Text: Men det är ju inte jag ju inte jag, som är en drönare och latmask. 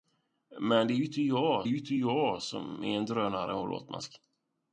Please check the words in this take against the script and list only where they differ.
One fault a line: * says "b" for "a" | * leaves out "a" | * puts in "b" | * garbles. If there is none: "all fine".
all fine